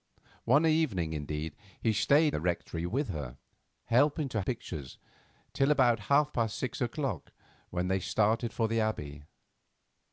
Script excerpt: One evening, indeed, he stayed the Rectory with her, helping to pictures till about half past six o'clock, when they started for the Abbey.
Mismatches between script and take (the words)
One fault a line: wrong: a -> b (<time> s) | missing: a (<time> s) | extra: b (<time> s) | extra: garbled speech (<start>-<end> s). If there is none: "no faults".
no faults